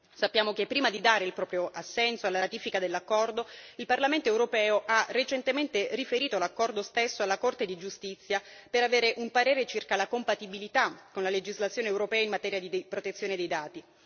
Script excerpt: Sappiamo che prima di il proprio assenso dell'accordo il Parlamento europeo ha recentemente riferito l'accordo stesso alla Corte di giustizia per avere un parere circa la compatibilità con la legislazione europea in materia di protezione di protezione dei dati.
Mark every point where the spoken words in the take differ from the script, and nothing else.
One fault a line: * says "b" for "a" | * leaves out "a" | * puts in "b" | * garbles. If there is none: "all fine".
* puts in "dare"
* puts in "alla ratifica"
* leaves out "di protezione"